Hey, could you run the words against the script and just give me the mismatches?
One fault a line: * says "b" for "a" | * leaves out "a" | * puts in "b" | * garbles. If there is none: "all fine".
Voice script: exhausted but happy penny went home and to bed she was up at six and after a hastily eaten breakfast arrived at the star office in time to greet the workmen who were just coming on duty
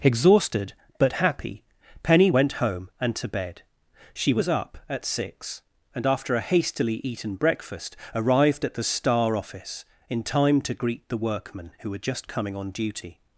all fine